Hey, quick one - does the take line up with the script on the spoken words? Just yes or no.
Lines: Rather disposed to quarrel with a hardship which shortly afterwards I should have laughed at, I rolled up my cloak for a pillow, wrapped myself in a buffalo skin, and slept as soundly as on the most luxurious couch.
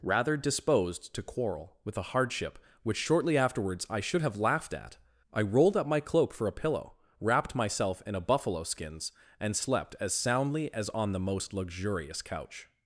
no